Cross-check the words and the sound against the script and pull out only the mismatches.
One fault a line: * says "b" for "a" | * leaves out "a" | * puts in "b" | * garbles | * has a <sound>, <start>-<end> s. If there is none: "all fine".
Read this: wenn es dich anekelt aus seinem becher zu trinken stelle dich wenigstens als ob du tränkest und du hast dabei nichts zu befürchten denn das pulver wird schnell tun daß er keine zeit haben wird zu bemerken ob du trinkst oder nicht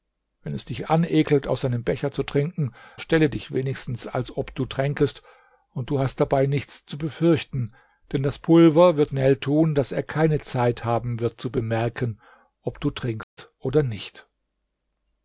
* has a dropout, 13.2-13.4 s